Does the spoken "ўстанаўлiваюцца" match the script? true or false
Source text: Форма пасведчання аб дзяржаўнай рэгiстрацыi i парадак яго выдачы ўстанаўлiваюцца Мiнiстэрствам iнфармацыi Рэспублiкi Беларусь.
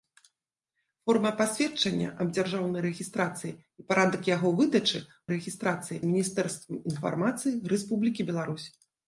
false